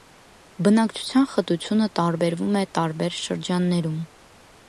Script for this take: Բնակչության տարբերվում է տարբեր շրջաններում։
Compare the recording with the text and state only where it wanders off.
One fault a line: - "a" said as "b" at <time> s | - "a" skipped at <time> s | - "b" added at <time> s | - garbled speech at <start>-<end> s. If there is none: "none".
- "խտությունը" added at 1.3 s